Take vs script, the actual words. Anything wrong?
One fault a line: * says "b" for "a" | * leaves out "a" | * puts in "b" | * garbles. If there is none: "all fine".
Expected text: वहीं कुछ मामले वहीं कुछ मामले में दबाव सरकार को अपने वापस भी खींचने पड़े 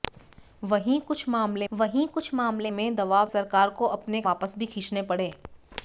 all fine